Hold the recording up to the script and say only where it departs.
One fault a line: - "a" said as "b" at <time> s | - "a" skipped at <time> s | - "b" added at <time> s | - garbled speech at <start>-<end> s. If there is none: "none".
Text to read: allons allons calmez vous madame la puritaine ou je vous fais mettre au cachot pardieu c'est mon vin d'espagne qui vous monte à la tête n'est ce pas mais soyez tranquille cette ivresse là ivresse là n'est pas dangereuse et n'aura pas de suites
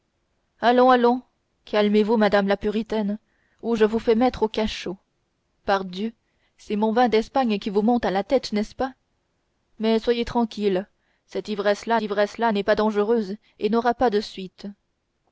none